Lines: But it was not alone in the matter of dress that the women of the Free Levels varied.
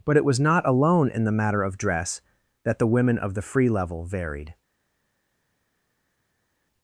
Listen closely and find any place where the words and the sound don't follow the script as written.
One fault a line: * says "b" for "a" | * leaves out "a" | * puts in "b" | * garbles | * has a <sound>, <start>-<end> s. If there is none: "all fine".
* says "Level" for "Levels"